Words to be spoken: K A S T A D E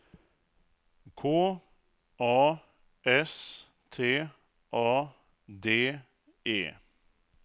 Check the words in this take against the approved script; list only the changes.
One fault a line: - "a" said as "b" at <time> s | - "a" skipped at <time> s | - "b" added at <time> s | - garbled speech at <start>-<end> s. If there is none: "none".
none